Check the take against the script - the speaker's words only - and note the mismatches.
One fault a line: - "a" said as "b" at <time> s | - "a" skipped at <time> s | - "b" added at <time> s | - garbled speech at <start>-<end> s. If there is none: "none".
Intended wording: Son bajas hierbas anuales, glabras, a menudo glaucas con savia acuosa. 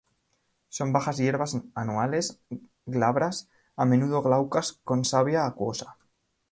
none